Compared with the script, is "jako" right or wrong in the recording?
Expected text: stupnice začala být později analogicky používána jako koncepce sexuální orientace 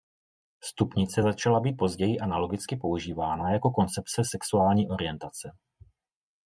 right